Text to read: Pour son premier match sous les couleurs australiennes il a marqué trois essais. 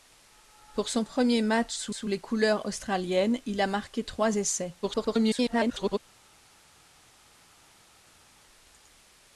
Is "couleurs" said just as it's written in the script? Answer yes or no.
yes